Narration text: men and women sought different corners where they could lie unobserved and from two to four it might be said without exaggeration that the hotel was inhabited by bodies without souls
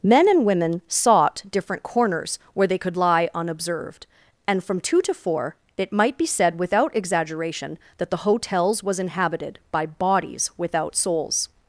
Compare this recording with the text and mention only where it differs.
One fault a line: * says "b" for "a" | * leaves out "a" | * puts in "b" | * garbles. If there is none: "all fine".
* says "hotels" for "hotel"